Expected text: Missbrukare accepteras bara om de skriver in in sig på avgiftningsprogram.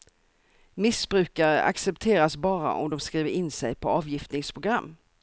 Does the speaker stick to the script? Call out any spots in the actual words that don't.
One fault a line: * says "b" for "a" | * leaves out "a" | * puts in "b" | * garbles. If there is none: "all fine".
* leaves out "in"